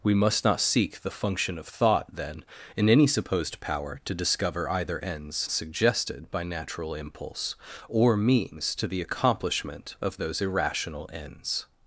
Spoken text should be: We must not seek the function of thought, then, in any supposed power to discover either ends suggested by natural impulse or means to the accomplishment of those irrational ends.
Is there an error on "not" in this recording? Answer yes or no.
no